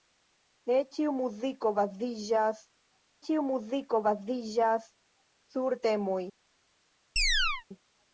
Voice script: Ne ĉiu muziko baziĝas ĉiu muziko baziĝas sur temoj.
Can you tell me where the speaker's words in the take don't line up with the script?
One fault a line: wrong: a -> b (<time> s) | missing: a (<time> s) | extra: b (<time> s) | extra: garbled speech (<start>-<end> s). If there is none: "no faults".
no faults